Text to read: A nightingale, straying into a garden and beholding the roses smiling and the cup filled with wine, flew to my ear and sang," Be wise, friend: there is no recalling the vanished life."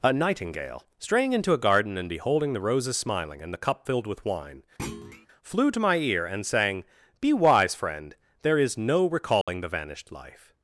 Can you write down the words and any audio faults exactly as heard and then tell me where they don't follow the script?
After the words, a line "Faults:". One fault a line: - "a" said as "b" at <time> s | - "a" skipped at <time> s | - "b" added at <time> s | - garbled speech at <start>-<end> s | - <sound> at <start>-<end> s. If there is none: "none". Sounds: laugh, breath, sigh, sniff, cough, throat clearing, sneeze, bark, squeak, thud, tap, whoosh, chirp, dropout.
A nightingale, straying into a garden and beholding the roses smiling and the cup filled with wine, flew to my ear and sang," Be wise, friend: there is no recalling the vanished life."
Faults:
- thud at 4.8-5.3 s
- dropout at 9.4-9.5 s